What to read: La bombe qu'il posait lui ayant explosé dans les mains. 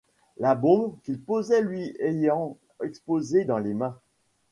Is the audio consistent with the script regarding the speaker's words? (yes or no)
yes